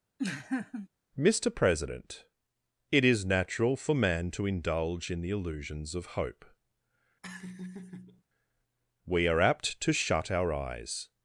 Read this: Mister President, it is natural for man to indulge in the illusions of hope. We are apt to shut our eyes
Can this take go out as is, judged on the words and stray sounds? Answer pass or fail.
fail